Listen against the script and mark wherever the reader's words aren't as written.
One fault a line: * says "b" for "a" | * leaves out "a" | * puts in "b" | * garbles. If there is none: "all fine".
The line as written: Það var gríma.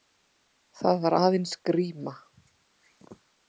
* puts in "aðeins"